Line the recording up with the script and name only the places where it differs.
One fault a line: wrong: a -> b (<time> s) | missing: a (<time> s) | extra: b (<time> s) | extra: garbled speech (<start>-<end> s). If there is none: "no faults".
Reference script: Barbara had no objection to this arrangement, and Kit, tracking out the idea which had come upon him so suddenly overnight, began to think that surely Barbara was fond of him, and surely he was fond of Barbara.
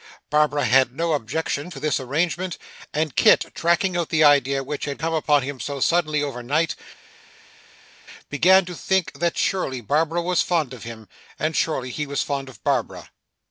no faults